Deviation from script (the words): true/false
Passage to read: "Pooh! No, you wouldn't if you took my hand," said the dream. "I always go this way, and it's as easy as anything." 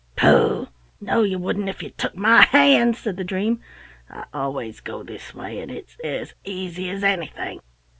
false